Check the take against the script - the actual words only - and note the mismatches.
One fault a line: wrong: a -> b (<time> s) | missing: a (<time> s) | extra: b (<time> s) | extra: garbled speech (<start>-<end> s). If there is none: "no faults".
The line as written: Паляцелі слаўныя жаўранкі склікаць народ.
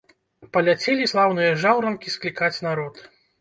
no faults